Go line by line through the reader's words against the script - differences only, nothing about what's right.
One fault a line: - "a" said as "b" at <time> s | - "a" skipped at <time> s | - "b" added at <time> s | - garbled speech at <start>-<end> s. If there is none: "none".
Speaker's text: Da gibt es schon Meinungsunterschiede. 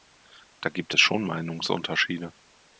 none